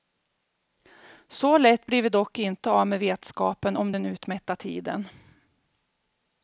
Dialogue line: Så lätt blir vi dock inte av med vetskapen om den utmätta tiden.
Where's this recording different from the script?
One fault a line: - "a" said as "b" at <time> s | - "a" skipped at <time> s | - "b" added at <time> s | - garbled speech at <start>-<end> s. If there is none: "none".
none